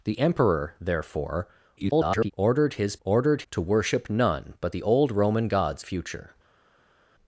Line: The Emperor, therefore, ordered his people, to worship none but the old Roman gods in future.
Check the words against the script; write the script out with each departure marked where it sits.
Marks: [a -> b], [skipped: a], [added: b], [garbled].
The Emperor, therefore, [garbled] ordered his [people, -> ordered] to worship none but the old Roman gods [skipped: in] future.